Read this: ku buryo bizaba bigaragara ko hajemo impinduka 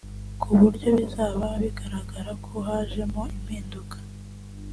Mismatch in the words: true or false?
false